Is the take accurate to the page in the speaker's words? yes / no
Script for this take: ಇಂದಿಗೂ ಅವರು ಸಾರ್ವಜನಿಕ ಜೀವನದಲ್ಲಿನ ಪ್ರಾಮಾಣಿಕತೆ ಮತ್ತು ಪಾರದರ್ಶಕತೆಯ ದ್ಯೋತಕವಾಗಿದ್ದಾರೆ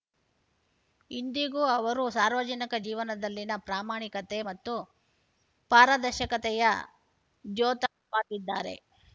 yes